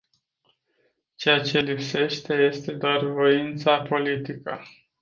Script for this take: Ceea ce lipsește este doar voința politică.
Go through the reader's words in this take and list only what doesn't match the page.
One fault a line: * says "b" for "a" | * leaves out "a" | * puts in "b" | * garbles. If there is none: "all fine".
all fine